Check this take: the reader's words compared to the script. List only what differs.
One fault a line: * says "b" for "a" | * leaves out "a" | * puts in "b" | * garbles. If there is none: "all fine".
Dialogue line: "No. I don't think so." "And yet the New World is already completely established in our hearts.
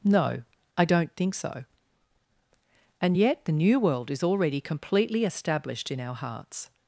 all fine